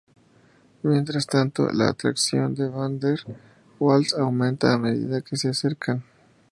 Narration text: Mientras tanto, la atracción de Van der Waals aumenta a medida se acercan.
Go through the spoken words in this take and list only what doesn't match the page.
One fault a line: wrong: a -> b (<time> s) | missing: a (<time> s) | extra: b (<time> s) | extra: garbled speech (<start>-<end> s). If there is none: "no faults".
extra: que (5.2 s)